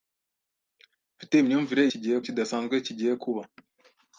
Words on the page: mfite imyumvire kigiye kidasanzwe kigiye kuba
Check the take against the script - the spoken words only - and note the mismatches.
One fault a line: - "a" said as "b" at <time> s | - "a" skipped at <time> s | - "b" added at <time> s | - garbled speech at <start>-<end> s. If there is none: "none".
none